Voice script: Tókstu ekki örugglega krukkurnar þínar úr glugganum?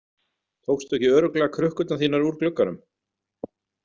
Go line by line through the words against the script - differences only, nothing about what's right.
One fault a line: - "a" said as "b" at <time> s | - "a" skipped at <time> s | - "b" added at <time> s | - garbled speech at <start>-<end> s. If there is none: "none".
none